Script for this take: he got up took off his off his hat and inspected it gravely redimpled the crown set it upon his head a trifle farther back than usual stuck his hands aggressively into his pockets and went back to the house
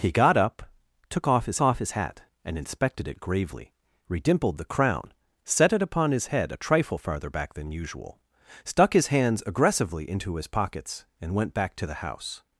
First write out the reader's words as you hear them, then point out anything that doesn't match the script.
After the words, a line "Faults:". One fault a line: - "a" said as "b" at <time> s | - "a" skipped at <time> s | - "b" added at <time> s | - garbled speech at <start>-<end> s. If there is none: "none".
he got up took off his off his hat and inspected it gravely redimpled the crown set it upon his head a trifle farther back than usual stuck his hands aggressively into his pockets and went back to the house
Faults:
none